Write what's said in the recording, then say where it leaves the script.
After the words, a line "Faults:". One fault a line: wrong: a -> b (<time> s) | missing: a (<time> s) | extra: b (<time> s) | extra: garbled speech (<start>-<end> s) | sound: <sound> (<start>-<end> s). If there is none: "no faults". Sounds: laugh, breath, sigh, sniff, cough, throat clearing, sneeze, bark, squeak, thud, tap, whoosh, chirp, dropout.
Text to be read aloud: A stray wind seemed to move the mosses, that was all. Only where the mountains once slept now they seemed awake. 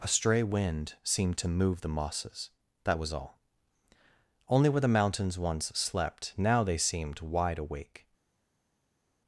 A stray wind seemed to move the mosses, that was all. Only where the mountains once slept now they seemed wide awake.
Faults:
extra: wide (7.2 s)